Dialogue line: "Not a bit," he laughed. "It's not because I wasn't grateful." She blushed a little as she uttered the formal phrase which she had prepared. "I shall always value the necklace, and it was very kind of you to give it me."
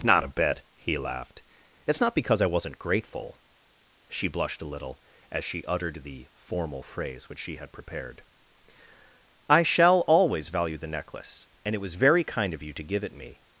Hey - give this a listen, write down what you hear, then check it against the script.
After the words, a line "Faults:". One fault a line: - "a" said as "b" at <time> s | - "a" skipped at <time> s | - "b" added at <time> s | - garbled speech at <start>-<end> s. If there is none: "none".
"Not a bit," he laughed. "It's not because I wasn't grateful." She blushed a little as she uttered the formal phrase which she had prepared. "I shall always value the necklace, and it was very kind of you to give it me."
Faults:
none